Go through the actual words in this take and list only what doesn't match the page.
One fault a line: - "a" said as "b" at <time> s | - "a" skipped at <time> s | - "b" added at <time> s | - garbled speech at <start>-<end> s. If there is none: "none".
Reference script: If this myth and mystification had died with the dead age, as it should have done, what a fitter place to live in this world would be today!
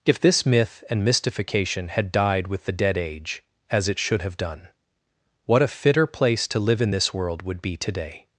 none